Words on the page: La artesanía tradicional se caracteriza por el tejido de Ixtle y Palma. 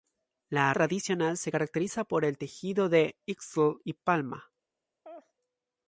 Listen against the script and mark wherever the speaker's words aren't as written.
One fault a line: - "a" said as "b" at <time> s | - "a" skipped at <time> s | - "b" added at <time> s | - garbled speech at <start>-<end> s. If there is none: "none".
- "artesanía" skipped at 0.7 s